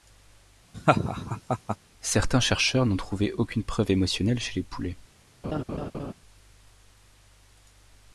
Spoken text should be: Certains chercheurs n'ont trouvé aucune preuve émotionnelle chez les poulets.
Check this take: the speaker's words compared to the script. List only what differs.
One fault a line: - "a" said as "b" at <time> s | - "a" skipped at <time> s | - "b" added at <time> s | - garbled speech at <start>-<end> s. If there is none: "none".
none